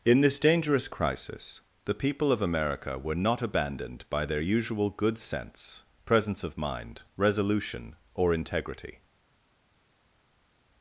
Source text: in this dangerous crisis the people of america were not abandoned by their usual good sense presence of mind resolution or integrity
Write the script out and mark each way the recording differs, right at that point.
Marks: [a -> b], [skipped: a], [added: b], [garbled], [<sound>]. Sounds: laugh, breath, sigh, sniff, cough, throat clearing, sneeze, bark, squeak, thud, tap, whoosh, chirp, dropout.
in this dangerous crisis the people of america were not abandoned by their usual good sense presence of mind resolution or integrity